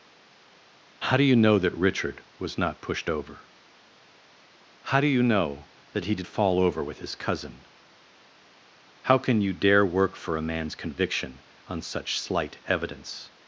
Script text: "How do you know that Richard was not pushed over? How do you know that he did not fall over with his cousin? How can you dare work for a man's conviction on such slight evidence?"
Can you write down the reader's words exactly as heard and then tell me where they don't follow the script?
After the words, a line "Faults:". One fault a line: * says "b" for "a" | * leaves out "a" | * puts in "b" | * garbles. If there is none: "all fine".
"How do you know that Richard was not pushed over? How do you know that he did fall over with his cousin? How can you dare work for a man's conviction on such slight evidence?"
Faults:
* leaves out "not"